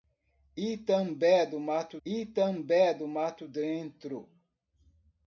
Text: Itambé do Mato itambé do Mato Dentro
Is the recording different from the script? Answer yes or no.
no